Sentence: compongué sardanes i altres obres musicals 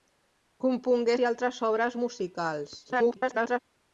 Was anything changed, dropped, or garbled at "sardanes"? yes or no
yes